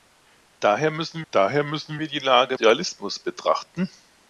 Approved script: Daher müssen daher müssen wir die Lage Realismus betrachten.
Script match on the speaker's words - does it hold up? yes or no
yes